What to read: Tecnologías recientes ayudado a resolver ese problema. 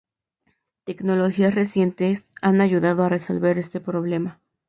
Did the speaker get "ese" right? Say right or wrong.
wrong